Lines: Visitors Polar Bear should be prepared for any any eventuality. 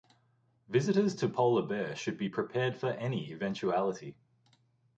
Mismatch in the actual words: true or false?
true